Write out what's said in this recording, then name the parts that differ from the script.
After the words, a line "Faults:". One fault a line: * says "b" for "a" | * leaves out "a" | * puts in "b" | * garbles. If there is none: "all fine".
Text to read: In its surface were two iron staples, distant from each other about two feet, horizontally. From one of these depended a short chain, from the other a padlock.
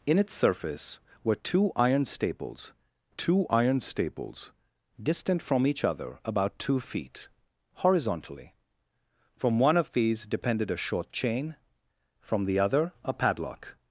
In its surface were two iron staples two iron staples, distant from each other about two feet, horizontally. From one of these depended a short chain, from the other a padlock.
Faults:
* puts in "two iron staples"